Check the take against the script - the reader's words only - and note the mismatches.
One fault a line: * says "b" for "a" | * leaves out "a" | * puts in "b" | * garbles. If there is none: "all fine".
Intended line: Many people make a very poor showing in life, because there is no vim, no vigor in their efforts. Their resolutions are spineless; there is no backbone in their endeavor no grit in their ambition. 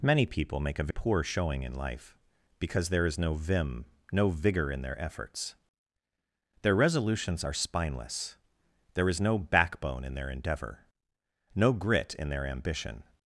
* leaves out "very"